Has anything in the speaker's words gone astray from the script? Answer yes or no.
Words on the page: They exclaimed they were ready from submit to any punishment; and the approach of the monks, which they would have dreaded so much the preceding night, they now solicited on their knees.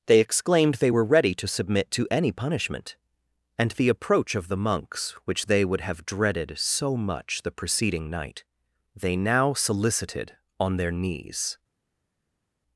yes